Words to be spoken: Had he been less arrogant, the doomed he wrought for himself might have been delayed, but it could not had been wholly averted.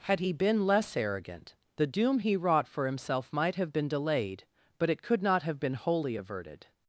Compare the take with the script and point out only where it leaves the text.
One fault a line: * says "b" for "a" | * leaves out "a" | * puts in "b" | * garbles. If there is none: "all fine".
* says "doom" for "doomed"
* says "have" for "had"